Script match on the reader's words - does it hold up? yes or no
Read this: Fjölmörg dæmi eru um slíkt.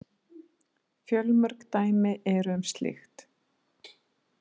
yes